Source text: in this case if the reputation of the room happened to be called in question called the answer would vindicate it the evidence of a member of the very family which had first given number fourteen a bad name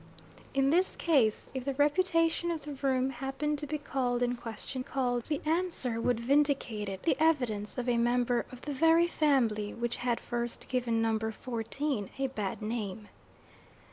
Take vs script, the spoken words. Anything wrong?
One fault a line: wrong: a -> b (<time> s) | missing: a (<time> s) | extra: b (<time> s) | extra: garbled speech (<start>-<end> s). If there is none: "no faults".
no faults